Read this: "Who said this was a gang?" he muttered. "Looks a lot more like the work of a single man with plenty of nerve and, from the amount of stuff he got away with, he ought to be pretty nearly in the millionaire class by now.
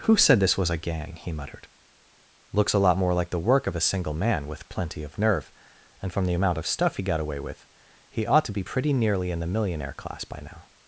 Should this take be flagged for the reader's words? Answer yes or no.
no